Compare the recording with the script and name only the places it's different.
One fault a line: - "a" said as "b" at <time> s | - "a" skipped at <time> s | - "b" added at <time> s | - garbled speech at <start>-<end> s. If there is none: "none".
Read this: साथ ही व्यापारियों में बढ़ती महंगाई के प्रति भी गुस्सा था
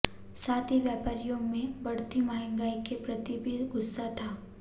none